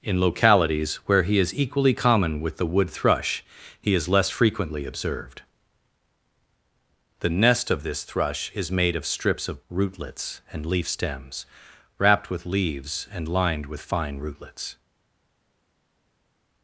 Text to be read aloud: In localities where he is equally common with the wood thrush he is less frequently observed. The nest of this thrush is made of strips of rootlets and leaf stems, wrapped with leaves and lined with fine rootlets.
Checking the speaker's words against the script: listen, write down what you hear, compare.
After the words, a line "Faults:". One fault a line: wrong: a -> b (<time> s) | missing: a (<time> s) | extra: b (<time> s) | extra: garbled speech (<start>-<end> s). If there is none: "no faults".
In localities where he is equally common with the wood thrush he is less frequently observed. The nest of this thrush is made of strips of rootlets and leaf stems, wrapped with leaves and lined with fine rootlets.
Faults:
no faults